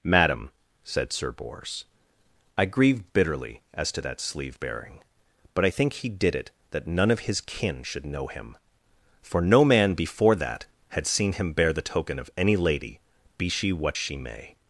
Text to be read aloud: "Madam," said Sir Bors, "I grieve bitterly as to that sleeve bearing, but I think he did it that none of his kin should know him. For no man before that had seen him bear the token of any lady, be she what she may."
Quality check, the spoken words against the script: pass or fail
pass